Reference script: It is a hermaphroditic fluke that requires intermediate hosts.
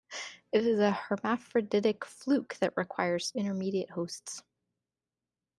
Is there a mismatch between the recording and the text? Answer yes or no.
no